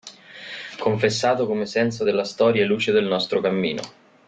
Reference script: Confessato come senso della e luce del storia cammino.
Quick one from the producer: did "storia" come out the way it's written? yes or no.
no